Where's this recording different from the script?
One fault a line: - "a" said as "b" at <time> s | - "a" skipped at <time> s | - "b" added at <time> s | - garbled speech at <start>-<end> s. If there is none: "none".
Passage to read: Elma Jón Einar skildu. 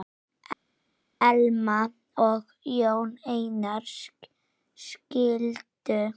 - "og" added at 2.2 s